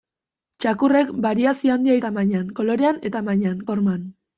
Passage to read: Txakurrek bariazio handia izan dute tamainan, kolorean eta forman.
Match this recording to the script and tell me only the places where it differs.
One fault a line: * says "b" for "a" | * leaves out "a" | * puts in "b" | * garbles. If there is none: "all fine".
* leaves out "izan dute"
* says "tamainan" for "eta"